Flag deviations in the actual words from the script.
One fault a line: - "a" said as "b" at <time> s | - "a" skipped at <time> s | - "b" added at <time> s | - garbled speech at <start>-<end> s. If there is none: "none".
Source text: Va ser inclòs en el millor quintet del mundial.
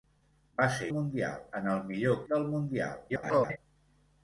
- "inclòs" said as "mundial" at 1.0 s
- "quintet" skipped at 2.2 s
- garbled speech at 3.1-3.6 s